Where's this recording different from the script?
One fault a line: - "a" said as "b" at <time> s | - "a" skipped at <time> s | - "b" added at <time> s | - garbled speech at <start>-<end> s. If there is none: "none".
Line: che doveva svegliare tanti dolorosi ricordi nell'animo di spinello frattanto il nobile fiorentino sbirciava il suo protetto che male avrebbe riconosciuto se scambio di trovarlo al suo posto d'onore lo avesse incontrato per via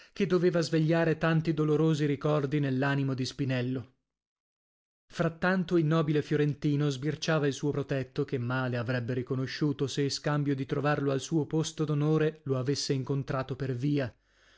none